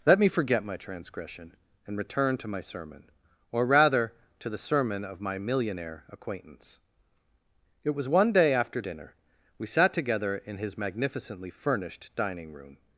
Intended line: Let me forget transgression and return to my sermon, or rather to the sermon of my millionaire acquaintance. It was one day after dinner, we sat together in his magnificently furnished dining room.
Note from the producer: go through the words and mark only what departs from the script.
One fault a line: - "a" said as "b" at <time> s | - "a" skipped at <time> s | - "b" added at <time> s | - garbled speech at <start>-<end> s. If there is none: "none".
- "my" added at 0.6 s